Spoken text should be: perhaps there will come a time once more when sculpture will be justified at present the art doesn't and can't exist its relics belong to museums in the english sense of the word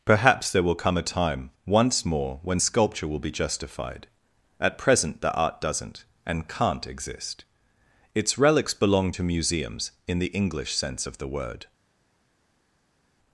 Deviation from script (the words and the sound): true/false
false